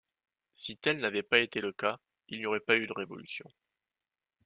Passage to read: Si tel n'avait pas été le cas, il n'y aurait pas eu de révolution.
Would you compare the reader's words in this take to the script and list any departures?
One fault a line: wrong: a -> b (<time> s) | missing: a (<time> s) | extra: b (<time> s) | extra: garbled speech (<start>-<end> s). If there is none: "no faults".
no faults